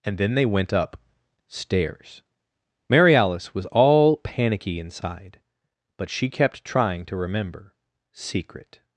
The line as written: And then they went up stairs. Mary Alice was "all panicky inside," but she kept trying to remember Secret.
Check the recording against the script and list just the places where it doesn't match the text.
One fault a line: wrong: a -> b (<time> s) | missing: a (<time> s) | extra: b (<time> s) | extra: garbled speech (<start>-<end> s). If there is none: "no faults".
no faults